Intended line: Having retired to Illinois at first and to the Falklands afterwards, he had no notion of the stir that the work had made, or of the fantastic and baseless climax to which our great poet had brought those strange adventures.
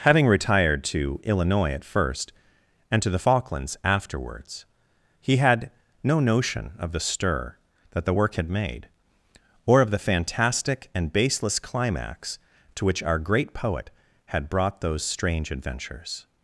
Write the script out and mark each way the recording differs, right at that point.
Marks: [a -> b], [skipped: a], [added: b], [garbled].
Having retired to Illinois at first and to the Falklands afterwards, he had no notion of the stir that the work had made, or of the fantastic and baseless climax to which our great poet had brought those strange adventures.